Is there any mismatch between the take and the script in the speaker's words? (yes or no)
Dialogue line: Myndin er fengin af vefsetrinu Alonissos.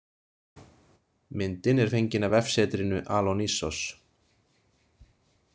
no